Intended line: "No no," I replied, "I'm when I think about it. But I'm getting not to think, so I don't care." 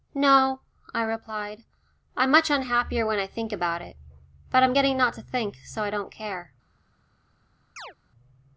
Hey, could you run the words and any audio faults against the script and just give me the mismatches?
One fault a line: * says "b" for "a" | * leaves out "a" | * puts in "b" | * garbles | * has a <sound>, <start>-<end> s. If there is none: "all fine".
* leaves out "no"
* puts in "much unhappier"
* has a chirp, 7.8-7.9 s